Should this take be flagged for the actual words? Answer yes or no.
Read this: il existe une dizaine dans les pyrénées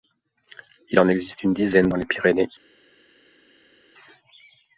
yes